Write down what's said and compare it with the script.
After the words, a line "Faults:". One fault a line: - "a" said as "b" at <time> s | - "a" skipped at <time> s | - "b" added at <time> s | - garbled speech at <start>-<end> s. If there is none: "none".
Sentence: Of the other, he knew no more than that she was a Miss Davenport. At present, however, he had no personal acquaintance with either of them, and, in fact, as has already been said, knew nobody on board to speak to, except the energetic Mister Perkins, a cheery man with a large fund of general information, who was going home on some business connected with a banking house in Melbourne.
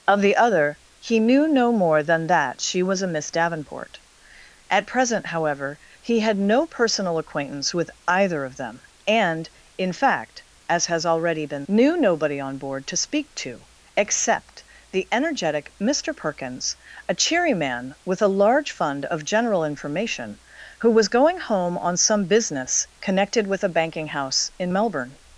Of the other, he knew no more than that she was a Miss Davenport. At present, however, he had no personal acquaintance with either of them, and, in fact, as has already been knew nobody on board to speak to, except the energetic Mister Perkins, a cheery man with a large fund of general information, who was going home on some business connected with a banking house in Melbourne.
Faults:
- "said" skipped at 11.7 s